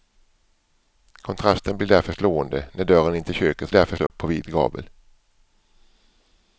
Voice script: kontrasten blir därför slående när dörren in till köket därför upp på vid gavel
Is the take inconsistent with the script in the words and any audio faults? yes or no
yes